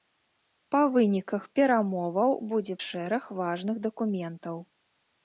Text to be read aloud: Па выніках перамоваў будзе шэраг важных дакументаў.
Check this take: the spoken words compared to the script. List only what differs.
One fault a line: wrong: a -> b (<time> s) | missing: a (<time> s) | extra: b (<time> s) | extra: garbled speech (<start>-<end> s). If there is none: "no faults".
no faults